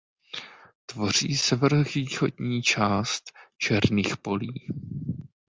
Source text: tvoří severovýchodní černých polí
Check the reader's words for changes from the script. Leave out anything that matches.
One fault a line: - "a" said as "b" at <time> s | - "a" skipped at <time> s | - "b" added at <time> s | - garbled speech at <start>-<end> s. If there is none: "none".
- "část" added at 2.6 s